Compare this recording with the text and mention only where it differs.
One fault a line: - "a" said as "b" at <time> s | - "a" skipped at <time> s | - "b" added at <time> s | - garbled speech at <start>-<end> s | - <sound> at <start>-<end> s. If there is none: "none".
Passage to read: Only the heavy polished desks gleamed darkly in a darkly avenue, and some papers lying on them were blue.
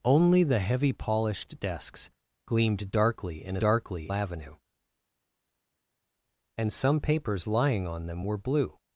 none